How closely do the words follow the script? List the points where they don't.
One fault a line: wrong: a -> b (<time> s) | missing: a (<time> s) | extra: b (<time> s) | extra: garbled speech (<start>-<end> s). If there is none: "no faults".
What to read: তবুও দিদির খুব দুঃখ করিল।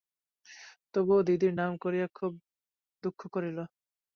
extra: নাম করিয়া (1.5 s)